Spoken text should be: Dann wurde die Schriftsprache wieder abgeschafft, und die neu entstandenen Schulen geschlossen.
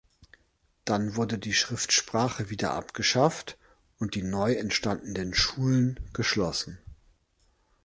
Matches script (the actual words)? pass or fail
pass